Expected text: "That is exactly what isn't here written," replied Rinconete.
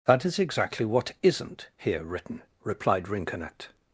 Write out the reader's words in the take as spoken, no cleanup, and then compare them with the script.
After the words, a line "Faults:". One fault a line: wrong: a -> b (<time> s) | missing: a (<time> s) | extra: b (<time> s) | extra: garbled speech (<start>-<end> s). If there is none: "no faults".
"That is exactly what isn't here written," replied Rinconete.
Faults:
no faults